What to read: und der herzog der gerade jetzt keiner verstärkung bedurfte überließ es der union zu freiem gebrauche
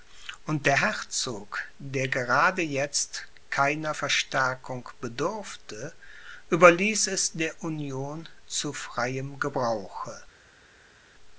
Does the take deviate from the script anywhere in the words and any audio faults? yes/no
no